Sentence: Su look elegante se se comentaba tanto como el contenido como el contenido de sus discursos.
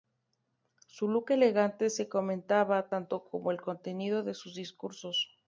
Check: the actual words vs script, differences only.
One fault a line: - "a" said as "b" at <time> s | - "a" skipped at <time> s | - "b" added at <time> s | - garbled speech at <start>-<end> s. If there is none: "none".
- "se" skipped at 2.1 s
- "como el contenido" skipped at 4.2 s